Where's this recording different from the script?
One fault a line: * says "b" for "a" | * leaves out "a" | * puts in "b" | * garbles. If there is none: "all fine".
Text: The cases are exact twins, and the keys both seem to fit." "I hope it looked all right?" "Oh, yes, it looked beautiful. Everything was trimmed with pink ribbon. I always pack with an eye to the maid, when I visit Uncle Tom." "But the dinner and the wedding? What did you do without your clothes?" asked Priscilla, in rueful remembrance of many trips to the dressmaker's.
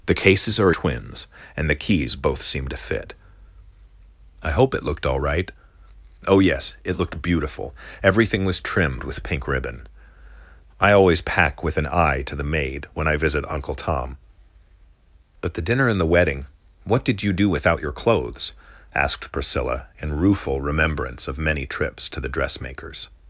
* leaves out "exact"